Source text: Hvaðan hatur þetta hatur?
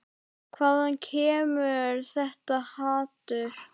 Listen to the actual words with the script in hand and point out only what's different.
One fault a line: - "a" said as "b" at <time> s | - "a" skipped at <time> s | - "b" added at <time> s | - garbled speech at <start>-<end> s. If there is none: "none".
- "hatur" said as "kemur" at 1.1 s